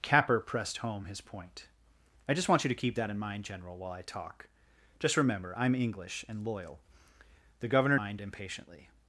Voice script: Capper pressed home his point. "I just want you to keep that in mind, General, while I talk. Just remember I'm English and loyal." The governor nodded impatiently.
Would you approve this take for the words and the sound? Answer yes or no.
no